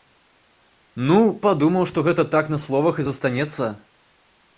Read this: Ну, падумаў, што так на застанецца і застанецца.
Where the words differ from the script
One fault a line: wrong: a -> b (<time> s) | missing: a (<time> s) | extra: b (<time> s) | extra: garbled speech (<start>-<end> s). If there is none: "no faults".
extra: гэта (2.1 s)
wrong: застанецца -> словах (2.6 s)